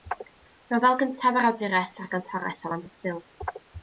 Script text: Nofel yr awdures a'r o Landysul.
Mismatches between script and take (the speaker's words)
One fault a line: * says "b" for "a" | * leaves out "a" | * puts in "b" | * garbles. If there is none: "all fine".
* puts in "gyntaf"
* puts in "gantores"